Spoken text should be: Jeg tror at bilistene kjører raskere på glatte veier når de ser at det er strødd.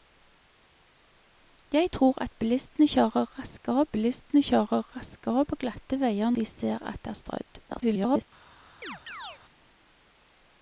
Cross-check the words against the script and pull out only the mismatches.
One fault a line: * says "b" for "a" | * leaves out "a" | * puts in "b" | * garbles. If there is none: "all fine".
* puts in "bilistene kjører raskere"
* leaves out "når"
* garbles